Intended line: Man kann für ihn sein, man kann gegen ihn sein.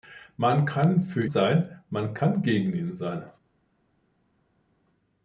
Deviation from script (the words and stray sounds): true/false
true